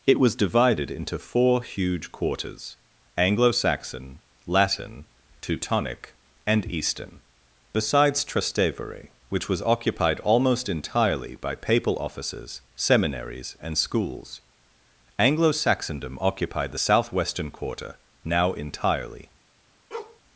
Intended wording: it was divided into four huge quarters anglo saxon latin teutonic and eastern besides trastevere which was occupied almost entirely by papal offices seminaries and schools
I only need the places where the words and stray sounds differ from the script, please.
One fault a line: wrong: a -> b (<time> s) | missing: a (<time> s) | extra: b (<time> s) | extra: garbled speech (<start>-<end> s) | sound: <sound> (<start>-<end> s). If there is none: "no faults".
extra: anglo saxondom occupied the southwestern quarter now entirely (15.2 s)
sound: bark (19.9-20.2 s)